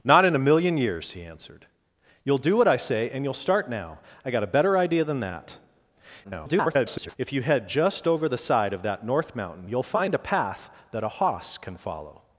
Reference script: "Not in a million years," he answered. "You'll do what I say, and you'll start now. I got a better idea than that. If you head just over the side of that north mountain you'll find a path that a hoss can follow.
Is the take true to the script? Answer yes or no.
no